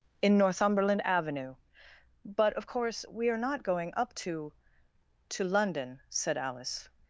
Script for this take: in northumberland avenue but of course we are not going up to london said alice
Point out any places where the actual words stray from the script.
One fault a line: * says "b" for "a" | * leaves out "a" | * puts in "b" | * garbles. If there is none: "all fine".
* puts in "to"